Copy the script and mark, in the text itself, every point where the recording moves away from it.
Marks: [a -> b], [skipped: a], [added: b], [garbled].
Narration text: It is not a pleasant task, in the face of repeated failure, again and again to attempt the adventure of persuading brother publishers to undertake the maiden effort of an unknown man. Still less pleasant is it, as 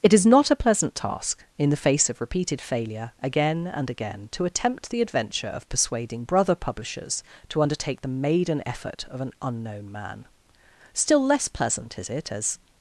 It is not a pleasant task, in the face of repeated failure, again and again to attempt the adventure of persuading brother publishers to undertake the maiden effort of an unknown man. Still less pleasant is it, as